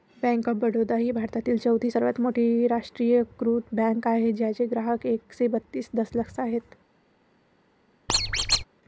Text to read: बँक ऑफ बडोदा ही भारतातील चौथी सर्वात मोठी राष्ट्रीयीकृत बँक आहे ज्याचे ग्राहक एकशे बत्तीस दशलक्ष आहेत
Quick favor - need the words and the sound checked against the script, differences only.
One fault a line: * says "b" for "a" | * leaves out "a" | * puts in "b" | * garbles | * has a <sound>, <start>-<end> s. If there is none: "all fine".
* has a squeak, 8.1-8.6 s